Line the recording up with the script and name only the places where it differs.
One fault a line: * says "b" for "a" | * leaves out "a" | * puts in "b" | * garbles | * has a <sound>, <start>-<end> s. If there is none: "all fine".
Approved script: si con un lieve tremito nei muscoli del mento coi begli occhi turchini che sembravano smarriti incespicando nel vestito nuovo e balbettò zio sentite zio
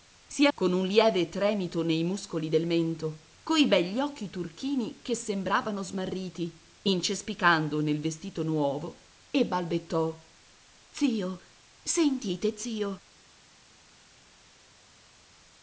all fine